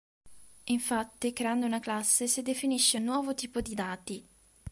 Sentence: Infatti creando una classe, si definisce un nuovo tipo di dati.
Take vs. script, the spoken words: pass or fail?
pass